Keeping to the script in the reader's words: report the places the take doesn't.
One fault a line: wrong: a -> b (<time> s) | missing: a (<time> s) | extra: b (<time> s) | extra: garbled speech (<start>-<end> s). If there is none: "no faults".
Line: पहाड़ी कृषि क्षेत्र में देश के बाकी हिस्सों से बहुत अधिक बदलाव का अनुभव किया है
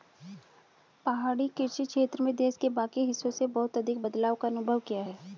no faults